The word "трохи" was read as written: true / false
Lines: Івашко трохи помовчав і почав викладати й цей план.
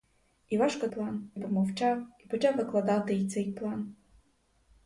false